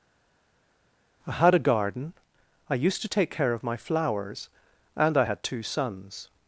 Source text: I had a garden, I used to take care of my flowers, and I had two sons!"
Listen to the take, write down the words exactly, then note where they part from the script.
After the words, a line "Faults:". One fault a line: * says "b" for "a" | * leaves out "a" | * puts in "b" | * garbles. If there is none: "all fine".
I had a garden, I used to take care of my flowers, and I had two sons!"
Faults:
all fine